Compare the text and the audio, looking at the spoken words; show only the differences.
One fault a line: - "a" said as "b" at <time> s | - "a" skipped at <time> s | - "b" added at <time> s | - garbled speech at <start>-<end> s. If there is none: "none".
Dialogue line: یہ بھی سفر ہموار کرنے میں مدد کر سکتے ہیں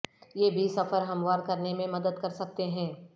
none